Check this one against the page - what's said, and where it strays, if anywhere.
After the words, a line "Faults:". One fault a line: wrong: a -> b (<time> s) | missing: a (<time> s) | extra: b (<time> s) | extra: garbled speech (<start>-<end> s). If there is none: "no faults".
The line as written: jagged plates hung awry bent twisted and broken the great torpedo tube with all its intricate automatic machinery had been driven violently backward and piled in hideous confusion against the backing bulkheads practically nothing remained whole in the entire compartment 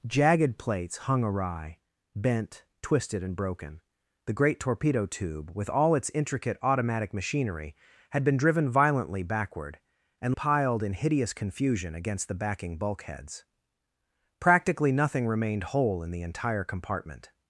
jagged plates hung awry bent twisted and broken the great torpedo tube with all its intricate automatic machinery had been driven violently backward and piled in hideous confusion against the backing bulkheads practically nothing remained whole in the entire compartment
Faults:
no faults